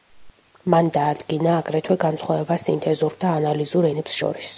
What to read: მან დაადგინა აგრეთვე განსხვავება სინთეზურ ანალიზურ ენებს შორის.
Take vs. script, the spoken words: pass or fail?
fail